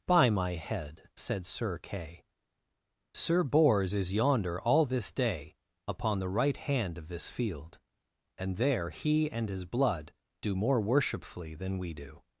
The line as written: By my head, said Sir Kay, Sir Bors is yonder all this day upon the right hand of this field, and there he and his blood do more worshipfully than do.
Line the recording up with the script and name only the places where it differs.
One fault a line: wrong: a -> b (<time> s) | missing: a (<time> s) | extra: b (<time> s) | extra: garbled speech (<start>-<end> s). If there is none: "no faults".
extra: we (11.8 s)